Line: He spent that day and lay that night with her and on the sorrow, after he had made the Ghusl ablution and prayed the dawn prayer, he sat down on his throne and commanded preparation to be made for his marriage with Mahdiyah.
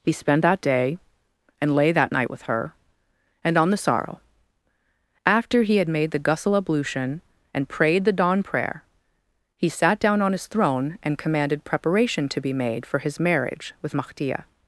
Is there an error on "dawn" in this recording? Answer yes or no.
no